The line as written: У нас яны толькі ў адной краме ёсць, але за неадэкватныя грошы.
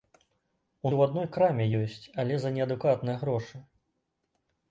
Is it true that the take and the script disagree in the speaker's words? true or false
true